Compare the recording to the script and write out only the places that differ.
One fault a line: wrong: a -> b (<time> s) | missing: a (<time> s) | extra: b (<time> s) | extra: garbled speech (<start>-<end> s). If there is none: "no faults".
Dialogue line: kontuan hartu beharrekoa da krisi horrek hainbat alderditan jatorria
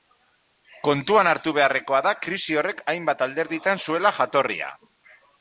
extra: zuela (3.9 s)